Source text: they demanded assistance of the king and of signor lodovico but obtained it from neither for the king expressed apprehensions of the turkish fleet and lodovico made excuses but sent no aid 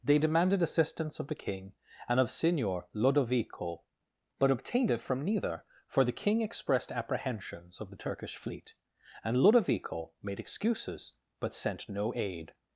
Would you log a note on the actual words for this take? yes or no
no